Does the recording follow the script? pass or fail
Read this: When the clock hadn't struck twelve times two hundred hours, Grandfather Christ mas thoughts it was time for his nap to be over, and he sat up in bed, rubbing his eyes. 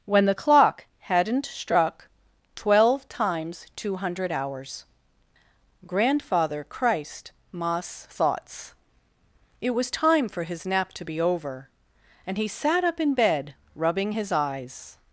pass